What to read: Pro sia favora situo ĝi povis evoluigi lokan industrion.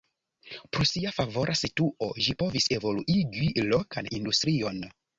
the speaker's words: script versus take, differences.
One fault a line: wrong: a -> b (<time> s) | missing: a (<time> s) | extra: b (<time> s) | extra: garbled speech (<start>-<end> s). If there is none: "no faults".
no faults